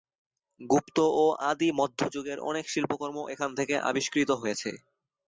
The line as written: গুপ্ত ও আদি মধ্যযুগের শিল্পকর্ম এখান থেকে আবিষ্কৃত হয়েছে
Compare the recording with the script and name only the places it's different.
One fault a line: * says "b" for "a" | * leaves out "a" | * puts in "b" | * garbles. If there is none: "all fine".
* puts in "অনেক"